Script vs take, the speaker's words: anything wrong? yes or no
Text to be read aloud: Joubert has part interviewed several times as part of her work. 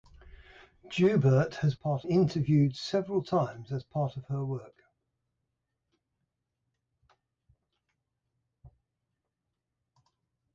no